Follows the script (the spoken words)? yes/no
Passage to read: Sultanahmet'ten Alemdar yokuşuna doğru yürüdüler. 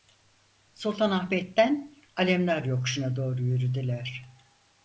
yes